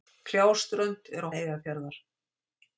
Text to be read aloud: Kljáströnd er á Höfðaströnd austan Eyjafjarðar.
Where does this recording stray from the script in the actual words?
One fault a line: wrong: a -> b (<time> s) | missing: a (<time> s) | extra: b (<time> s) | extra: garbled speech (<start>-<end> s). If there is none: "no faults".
missing: Höfðaströnd austan (1.3 s)